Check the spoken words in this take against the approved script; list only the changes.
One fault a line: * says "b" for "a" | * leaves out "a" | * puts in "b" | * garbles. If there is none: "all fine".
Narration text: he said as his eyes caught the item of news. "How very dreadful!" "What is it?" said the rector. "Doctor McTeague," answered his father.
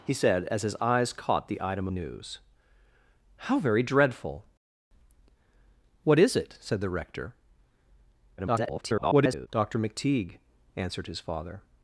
* leaves out "of"
* garbles